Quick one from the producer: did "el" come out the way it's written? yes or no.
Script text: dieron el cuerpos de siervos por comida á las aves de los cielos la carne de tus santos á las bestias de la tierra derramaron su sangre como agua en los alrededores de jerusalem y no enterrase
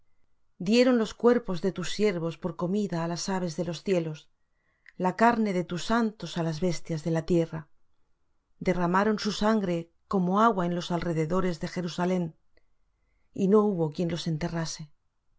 no